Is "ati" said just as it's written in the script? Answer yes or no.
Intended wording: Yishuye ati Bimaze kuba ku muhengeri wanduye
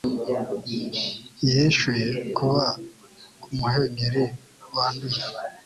no